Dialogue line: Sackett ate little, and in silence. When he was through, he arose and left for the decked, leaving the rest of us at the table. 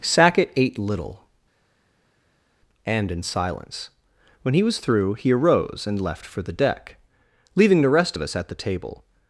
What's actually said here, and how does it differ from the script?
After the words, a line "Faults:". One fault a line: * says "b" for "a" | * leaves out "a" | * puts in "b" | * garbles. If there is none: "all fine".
Sackett ate little, and in silence. When he was through, he arose and left for the deck, leaving the rest of us at the table.
Faults:
* says "deck" for "decked"